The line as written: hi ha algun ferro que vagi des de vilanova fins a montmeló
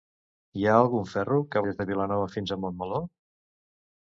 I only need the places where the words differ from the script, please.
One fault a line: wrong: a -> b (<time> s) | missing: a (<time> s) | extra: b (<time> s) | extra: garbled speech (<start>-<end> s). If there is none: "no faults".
missing: vagi (1.6 s)